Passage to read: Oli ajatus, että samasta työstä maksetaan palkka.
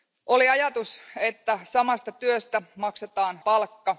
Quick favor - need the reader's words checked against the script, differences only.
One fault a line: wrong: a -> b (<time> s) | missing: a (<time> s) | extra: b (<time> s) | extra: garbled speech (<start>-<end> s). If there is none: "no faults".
no faults